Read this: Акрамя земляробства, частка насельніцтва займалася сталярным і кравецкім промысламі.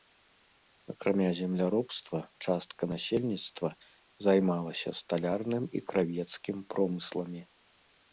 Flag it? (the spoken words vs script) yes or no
no